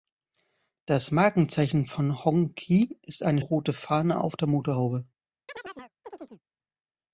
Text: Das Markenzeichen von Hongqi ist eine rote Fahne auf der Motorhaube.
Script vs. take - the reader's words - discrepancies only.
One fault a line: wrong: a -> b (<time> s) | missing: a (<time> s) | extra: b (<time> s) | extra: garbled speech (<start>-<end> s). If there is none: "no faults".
no faults